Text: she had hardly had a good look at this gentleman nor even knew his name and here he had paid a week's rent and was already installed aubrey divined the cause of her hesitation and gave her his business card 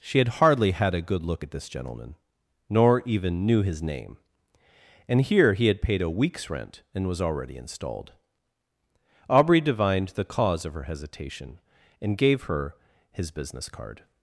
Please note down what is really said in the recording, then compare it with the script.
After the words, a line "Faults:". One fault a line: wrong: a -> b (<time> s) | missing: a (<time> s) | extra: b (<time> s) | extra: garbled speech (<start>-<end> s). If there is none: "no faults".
she had hardly had a good look at this gentleman nor even knew his name and here he had paid a week's rent and was already installed aubrey divined the cause of her hesitation and gave her his business card
Faults:
no faults